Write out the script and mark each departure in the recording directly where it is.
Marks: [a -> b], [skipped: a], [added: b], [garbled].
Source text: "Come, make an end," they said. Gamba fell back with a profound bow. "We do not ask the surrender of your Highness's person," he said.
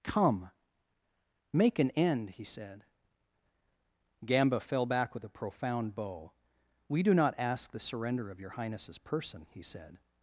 "Come, make an end," [they -> he] said. Gamba fell back with a profound bow. "We do not ask the surrender of your Highness's person," he said.